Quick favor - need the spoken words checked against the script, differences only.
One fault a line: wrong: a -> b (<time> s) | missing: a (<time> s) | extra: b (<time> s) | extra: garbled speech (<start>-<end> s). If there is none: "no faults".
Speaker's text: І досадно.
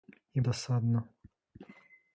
no faults